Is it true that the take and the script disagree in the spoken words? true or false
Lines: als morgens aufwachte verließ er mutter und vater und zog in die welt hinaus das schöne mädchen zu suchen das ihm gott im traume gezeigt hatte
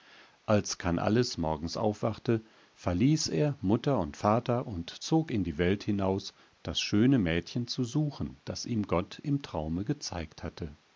true